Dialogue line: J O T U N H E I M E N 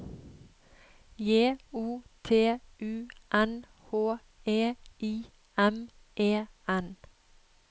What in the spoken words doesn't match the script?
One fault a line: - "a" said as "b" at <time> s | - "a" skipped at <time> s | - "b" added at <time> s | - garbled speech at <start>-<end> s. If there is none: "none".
none